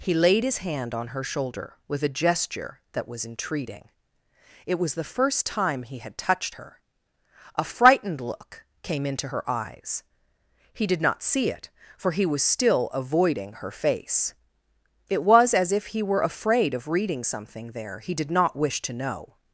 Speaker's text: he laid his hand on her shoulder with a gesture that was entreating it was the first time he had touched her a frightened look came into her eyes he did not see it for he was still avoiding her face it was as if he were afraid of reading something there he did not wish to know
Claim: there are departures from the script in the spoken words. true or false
false